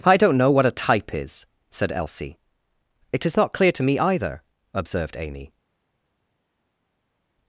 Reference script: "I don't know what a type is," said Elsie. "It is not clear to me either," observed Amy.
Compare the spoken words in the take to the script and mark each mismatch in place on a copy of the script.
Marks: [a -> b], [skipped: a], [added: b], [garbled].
"I don't know what a type is," said Elsie. "It is not clear to me either," observed Amy.